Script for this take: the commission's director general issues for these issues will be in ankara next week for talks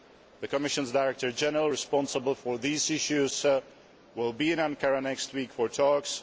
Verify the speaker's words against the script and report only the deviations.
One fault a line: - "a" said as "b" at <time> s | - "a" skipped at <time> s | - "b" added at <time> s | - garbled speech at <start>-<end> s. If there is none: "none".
- "issues" said as "responsible" at 1.7 s